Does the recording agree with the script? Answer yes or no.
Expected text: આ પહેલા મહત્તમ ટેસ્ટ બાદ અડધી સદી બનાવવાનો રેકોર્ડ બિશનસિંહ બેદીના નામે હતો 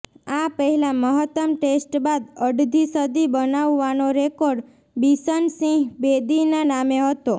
yes